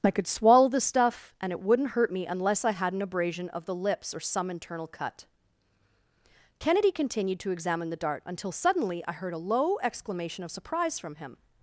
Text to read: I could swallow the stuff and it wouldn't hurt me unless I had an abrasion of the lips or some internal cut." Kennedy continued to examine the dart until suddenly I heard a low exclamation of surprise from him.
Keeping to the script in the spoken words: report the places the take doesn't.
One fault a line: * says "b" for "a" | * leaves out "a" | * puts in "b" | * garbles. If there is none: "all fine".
all fine